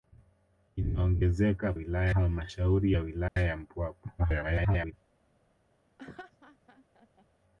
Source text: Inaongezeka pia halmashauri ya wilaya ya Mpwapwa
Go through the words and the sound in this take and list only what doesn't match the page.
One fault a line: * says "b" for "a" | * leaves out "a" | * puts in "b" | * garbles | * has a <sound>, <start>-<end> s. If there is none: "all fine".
* says "wilaya" for "pia"
* has a dropout, 3.3-3.4 s
* garbles
* has a laugh, 6.0-7.3 s